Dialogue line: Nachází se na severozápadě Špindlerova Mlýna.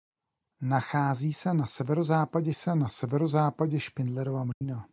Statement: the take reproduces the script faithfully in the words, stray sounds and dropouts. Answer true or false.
false